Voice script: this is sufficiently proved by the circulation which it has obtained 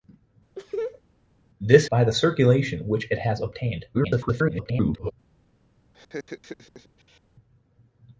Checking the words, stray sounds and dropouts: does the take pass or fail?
fail